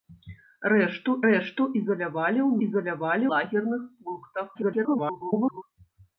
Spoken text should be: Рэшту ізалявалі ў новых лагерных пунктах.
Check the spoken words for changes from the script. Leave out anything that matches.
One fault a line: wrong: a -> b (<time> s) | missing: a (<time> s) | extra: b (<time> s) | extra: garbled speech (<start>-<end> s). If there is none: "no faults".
extra: рэшту (1.3 s)
wrong: новых -> ізалявалі (2.7 s)
extra: garbled speech (4.5-5.6 s)